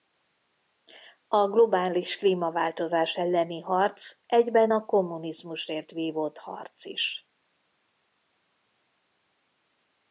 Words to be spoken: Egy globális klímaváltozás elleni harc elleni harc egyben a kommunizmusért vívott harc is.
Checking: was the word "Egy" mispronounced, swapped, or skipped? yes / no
yes